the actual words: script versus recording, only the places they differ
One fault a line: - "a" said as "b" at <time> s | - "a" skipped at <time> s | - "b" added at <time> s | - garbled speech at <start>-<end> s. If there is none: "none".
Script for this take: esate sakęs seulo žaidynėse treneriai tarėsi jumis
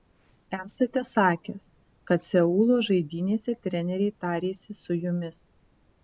- "kad" added at 2.1 s
- "su" added at 4.8 s